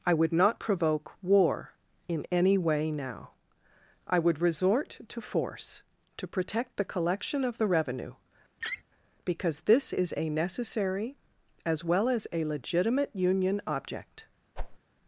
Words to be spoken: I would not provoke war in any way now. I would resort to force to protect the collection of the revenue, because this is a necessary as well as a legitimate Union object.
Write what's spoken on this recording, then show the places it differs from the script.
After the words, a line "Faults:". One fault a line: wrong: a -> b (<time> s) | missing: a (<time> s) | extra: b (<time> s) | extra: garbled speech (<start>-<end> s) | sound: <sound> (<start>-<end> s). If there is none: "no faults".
I would not provoke war in any way now. I would resort to force to protect the collection of the revenue, because this is a necessary as well as a legitimate Union object.
Faults:
sound: laugh (8.6-8.8 s)
sound: whoosh (14.6-14.8 s)